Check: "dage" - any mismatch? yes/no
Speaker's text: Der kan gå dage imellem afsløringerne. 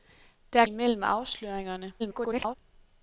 yes